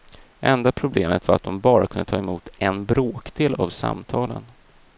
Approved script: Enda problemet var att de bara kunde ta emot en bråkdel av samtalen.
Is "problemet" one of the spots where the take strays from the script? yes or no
no